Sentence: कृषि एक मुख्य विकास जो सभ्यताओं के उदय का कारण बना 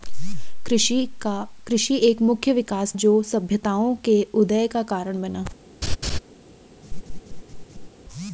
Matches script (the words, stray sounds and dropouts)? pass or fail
fail